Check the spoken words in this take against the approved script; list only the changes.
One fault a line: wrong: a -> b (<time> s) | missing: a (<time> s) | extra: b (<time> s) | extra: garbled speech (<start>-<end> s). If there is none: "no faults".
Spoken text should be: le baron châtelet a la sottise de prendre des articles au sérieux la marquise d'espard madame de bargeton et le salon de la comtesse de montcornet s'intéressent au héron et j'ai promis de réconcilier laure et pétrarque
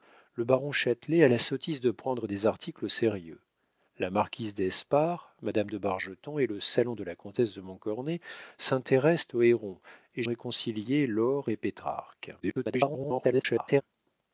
missing: j'ai promis de (10.2 s)
extra: garbled speech (12.4-13.8 s)